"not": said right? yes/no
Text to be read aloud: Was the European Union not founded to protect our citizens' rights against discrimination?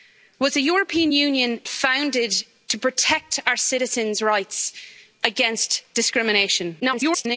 no